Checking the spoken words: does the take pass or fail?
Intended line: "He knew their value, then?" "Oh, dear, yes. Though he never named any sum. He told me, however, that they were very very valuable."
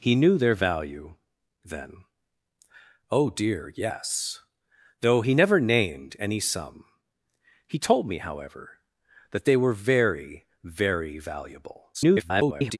fail